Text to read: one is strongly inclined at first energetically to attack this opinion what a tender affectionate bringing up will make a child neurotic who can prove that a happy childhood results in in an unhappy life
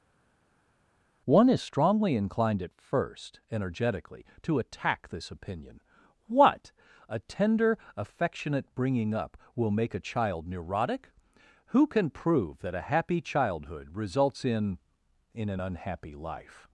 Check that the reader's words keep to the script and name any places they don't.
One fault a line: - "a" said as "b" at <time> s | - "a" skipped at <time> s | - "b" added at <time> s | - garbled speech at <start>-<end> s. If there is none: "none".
none